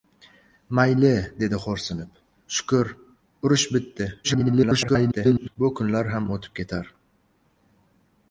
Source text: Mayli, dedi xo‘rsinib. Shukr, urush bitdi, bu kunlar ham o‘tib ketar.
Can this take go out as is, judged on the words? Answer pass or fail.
fail